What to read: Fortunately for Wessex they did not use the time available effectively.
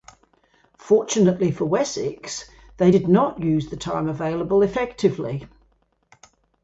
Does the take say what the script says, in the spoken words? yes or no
yes